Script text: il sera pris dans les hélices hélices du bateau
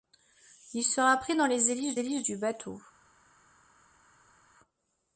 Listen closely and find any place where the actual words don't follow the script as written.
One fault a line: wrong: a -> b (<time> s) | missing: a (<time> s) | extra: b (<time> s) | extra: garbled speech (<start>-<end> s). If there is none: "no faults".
no faults